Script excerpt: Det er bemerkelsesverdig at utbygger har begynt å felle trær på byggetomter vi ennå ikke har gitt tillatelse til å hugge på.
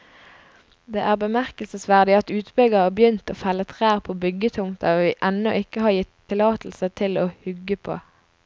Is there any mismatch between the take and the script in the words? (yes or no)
no